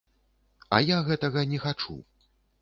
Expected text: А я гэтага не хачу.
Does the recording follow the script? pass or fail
pass